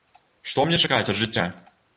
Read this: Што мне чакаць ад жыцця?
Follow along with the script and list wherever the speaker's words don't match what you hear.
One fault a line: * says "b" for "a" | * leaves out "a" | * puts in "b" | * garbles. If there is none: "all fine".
all fine